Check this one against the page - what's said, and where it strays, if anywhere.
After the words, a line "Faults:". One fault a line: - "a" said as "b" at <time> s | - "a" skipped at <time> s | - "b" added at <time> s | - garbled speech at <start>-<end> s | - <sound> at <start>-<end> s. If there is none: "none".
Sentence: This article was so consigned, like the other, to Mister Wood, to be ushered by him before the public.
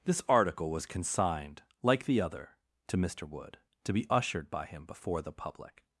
This article was consigned, like the other, to Mister Wood, to be ushered by him before the public.
Faults:
- "so" skipped at 0.9 s